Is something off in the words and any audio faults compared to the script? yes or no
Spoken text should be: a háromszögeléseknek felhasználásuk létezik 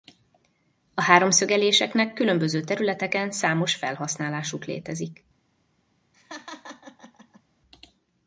yes